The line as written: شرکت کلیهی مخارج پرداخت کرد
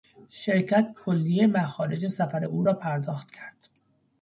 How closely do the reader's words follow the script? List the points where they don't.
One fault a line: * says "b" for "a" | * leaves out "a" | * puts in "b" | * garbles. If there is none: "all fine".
* puts in "سفر او را"